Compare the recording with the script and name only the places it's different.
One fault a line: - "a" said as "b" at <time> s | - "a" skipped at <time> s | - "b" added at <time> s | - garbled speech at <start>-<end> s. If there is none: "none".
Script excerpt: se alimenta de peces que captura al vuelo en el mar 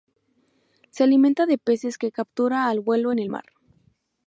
none